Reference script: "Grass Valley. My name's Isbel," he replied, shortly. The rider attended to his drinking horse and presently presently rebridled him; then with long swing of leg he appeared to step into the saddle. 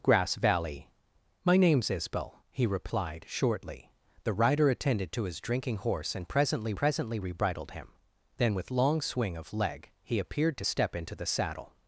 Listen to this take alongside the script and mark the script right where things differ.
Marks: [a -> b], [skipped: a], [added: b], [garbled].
"Grass Valley. My name's Isbel," he replied, shortly. The rider attended to his drinking horse and presently presently rebridled him; then with long swing of leg he appeared to step into the saddle.